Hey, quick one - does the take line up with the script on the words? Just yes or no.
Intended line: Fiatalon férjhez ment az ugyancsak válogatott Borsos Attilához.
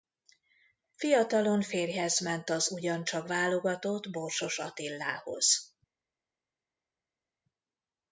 yes